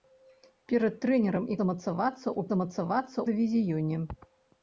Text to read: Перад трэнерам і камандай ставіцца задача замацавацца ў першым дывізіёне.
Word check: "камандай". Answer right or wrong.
wrong